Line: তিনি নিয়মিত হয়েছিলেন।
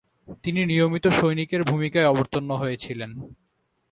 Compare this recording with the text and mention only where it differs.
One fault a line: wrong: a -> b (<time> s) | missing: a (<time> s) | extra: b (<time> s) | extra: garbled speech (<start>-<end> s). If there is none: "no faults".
extra: সৈনিকের ভূমিকায় অবতীর্ণ (1.1 s)